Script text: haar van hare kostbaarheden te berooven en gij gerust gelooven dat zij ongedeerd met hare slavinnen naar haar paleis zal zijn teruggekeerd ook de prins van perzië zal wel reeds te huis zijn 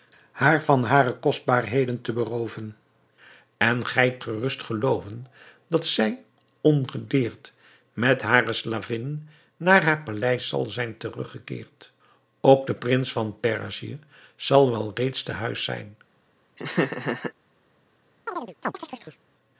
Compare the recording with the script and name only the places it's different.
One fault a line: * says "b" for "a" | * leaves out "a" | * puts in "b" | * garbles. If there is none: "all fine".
all fine